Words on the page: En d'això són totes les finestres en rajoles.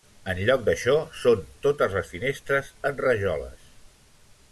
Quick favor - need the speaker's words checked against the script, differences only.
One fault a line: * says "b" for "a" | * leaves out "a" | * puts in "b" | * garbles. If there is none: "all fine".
* puts in "lloc"